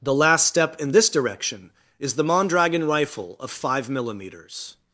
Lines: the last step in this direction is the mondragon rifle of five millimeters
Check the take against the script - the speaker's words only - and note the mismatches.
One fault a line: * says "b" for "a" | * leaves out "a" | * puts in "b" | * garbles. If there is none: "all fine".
all fine